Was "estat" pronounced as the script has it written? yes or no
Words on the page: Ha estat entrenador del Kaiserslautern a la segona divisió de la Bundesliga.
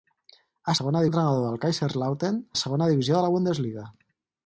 no